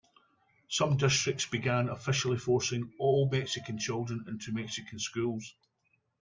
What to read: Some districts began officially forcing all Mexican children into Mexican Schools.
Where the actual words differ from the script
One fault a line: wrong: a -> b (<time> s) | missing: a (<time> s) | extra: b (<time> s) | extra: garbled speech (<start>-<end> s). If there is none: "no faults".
no faults